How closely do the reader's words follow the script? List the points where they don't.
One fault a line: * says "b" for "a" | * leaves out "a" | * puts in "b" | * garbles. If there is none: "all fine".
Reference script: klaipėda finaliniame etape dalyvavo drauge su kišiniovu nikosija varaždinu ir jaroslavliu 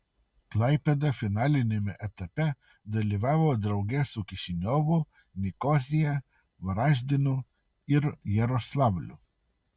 all fine